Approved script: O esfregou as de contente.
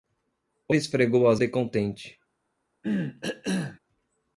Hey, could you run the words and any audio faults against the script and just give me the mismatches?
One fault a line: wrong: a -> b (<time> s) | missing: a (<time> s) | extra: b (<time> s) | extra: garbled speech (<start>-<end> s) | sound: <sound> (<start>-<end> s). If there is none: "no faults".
sound: cough (2.8-3.8 s)